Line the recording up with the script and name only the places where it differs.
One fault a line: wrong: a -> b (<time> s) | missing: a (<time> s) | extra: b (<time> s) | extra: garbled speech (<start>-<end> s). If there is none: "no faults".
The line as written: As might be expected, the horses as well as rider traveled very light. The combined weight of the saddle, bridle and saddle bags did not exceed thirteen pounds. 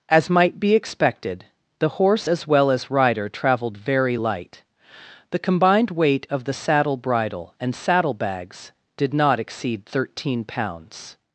wrong: horses -> horse (1.9 s)